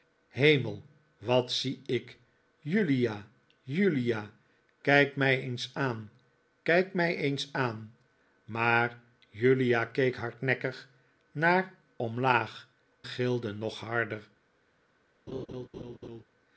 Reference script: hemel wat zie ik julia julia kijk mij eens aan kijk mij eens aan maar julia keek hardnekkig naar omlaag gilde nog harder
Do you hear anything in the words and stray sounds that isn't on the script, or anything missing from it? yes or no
yes